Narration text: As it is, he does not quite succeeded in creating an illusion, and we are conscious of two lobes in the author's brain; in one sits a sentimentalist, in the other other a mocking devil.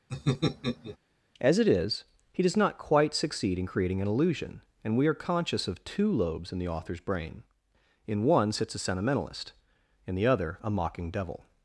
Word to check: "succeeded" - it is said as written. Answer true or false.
false